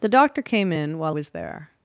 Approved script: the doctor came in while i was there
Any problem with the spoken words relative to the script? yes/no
yes